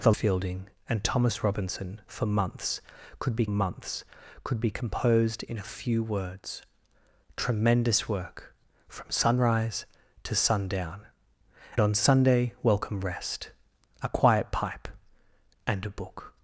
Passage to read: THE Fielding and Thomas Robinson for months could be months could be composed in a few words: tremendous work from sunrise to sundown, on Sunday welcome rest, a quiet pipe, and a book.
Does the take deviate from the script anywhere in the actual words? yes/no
no